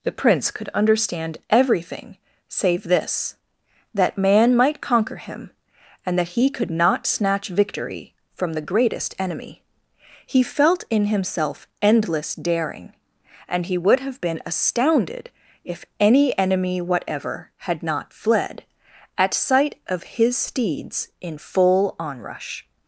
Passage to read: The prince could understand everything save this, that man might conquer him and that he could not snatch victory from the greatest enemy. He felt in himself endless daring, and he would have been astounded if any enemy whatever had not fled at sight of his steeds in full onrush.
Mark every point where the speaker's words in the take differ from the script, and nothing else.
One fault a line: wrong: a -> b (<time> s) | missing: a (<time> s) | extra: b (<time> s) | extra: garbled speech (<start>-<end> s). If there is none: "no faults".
no faults